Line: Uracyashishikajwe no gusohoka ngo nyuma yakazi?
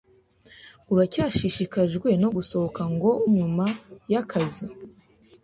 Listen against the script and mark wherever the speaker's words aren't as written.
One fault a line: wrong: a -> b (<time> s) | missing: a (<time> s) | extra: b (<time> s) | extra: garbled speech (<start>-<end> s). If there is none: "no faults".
no faults